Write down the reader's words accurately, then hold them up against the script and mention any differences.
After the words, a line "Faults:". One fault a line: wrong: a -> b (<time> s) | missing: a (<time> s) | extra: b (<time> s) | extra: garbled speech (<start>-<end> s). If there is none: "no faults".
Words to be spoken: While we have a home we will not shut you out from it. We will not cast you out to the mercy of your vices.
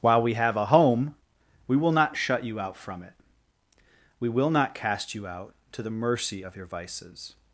While we have a home we will not shut you out from it. We will not cast you out to the mercy of your vices.
Faults:
no faults